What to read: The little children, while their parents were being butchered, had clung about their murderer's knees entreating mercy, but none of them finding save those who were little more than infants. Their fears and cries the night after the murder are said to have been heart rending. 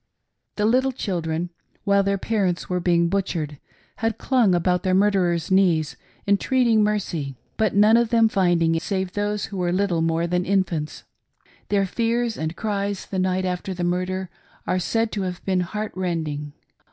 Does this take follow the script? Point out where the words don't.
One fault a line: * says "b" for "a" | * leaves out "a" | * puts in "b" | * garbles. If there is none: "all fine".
all fine